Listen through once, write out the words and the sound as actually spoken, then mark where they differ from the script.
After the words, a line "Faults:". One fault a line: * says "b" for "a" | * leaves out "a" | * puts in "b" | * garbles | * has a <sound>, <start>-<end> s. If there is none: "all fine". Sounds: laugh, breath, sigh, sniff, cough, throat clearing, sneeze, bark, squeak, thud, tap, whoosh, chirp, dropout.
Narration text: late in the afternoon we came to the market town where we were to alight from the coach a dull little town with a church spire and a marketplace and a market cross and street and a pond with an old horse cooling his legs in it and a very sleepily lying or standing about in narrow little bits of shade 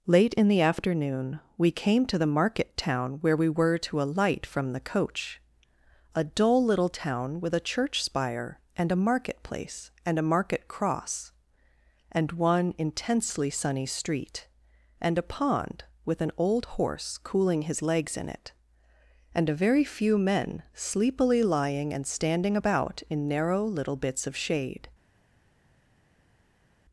late in the afternoon we came to the market town where we were to alight from the coach a dull little town with a church spire and a marketplace and a market cross and one intensely sunny street and a pond with an old horse cooling his legs in it and a very few men sleepily lying and standing about in narrow little bits of shade
Faults:
* puts in "one intensely sunny"
* puts in "few men"
* says "and" for "or"